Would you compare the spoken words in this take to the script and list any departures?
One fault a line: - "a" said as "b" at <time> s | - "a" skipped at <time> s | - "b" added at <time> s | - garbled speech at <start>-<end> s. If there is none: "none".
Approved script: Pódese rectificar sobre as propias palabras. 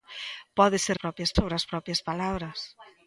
- "rectificar" said as "propias" at 1.0 s